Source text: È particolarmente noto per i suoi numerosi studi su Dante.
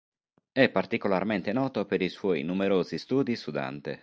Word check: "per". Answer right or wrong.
right